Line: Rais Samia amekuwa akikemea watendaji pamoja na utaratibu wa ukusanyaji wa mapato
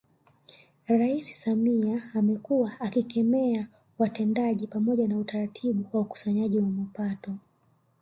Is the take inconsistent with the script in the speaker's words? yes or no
no